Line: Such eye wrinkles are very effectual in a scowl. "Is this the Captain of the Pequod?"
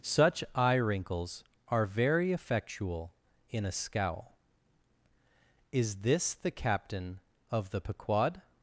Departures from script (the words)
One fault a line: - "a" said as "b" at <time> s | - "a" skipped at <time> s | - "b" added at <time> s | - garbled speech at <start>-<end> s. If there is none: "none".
none